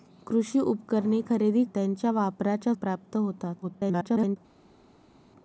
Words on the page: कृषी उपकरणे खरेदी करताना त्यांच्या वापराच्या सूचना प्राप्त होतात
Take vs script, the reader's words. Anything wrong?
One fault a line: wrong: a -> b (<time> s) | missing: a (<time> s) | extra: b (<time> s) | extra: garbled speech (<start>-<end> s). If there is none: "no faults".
missing: करताना (1.6 s)
missing: सूचना (2.7 s)
extra: garbled speech (3.6-4.4 s)